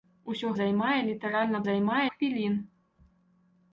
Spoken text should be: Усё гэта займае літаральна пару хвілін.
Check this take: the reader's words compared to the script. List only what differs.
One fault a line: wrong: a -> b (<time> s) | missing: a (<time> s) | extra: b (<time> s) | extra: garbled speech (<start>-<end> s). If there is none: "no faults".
missing: гэта (0.5 s)
wrong: пару -> займае (1.7 s)